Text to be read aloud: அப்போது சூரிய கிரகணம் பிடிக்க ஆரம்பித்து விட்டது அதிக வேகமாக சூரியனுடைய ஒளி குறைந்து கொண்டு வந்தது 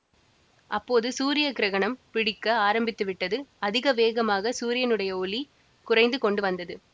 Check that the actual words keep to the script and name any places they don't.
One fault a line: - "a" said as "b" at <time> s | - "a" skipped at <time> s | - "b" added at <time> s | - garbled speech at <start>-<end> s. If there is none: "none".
none